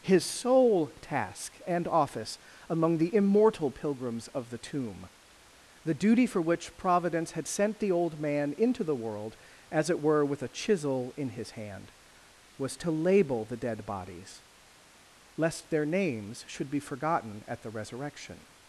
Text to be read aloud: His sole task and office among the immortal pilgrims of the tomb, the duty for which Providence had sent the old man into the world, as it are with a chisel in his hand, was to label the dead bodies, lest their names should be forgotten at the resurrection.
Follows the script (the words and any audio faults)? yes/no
no